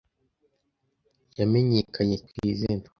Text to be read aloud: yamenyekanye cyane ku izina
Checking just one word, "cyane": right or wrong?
wrong